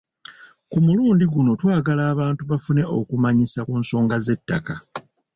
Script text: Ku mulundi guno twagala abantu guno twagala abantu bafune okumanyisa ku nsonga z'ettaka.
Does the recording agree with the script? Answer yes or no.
no